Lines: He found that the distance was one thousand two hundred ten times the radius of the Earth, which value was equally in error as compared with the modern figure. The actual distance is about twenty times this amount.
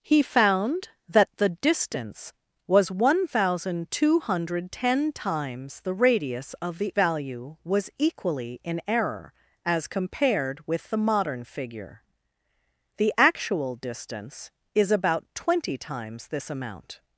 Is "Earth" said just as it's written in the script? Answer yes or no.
no